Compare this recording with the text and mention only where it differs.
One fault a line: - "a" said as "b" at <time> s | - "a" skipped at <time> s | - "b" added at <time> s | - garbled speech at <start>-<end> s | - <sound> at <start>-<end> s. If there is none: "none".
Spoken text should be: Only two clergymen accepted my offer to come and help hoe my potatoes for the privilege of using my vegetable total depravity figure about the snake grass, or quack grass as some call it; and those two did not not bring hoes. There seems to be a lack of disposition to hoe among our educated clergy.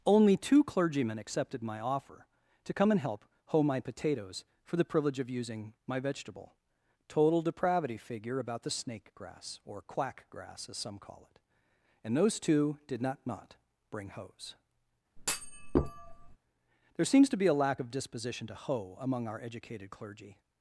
- thud at 15.2-16.4 s